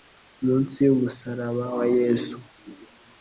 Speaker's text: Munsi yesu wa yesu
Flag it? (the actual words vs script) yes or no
yes